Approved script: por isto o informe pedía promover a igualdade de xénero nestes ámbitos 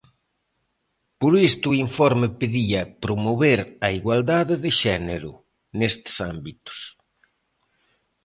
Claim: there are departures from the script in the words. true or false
false